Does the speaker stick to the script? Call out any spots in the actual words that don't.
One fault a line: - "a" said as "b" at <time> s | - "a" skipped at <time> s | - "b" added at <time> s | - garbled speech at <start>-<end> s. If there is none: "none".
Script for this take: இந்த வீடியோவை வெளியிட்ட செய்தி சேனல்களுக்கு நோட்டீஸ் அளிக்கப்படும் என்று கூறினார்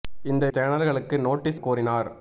- "வீடியோவை வெளியிட்ட செய்தி" skipped at 0.5 s
- "அளிக்கப்படும் என்று" skipped at 1.6 s